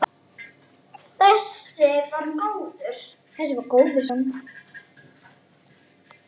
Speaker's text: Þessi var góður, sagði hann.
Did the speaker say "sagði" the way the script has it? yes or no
no